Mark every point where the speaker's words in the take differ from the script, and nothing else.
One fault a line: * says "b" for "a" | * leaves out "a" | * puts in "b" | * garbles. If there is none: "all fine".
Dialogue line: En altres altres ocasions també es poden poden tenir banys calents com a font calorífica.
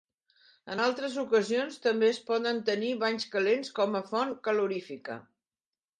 * leaves out "altres"
* leaves out "poden"